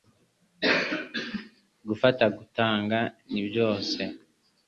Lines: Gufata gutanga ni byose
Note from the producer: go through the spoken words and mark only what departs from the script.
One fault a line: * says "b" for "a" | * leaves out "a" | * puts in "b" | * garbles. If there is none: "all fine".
all fine